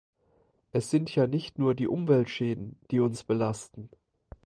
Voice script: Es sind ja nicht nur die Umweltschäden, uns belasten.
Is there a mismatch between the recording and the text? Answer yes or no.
yes